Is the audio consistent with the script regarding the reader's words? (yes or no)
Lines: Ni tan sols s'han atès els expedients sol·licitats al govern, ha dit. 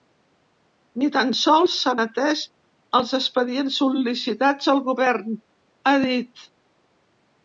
yes